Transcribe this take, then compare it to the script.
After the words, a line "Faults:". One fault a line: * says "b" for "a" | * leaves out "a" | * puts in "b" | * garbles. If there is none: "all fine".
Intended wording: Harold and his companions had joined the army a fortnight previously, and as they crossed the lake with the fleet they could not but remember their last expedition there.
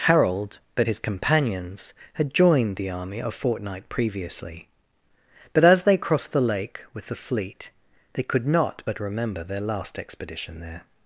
Harold but his companions had joined the army a fortnight previously, but as they crossed the lake with the fleet they could not but remember their last expedition there.
Faults:
* says "but" for "and"
* says "but" for "and"